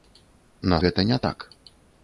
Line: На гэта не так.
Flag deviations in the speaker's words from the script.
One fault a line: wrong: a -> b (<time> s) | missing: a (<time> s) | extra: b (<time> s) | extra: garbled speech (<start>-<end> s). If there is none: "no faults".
no faults